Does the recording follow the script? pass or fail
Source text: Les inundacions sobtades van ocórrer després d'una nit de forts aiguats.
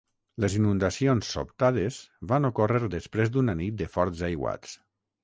pass